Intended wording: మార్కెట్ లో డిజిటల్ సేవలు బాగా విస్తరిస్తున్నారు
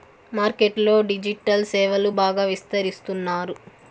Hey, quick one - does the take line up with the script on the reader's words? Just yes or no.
yes